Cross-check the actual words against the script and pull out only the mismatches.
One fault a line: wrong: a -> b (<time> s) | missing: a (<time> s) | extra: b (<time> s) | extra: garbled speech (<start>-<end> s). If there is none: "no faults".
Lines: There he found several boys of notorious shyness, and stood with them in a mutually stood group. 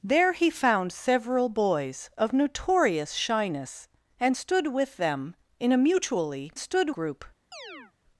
no faults